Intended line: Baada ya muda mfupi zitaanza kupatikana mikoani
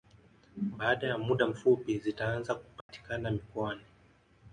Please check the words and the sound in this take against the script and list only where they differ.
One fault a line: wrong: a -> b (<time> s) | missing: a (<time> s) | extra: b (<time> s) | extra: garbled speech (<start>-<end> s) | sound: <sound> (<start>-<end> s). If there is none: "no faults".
sound: dropout (2.8-2.9 s)